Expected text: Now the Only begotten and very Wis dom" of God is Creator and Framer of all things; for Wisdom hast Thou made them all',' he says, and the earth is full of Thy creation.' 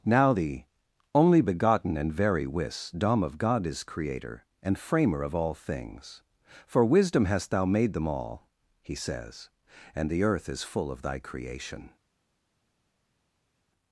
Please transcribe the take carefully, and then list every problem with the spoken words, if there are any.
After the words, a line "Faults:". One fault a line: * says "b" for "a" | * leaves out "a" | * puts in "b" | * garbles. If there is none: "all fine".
Now the Only begotten and very Wis dom" of God is Creator and Framer of all things; for Wisdom hast Thou made them all',' he says, and the earth is full of Thy creation.'
Faults:
all fine